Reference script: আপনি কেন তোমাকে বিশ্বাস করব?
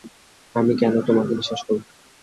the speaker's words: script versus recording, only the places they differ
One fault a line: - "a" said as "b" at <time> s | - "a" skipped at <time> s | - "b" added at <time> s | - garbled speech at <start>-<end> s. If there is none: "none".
- "আপনি" said as "আমি" at 0.6 s